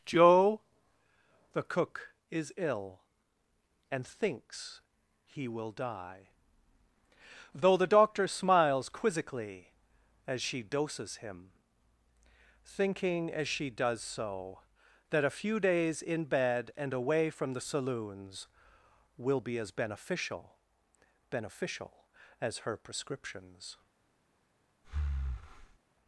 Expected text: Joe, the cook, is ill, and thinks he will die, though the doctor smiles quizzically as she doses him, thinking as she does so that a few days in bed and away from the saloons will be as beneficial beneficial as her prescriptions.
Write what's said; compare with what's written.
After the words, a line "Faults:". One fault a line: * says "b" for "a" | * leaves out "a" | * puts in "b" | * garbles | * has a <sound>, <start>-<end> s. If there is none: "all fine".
Joe, the cook, is ill, and thinks he will die, though the doctor smiles quizzically as she doses him, thinking as she does so that a few days in bed and away from the saloons will be as beneficial beneficial as her prescriptions.
Faults:
* has a breath, 24.8-25.8 s